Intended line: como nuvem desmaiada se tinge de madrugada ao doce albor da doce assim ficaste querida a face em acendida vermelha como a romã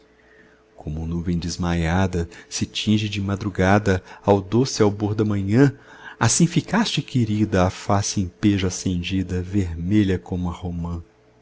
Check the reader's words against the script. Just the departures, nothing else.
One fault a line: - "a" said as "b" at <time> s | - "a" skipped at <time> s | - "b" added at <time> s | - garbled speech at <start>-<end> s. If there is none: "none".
- "doce" said as "manhã" at 5.2 s
- "pejo" added at 8.3 s